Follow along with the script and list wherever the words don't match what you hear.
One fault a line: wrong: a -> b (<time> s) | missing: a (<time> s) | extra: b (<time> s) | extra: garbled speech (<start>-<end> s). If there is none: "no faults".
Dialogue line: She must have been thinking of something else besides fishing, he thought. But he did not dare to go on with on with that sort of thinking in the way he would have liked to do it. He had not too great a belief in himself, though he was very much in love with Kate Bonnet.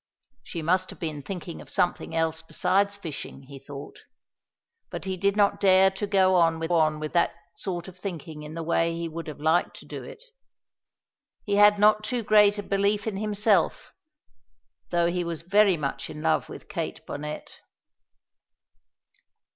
no faults